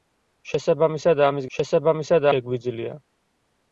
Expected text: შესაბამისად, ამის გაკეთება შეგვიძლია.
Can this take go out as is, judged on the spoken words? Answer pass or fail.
fail